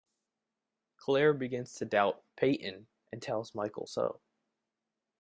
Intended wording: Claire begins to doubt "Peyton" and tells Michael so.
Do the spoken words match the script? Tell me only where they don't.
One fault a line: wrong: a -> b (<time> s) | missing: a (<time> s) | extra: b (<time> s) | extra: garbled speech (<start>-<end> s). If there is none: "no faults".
no faults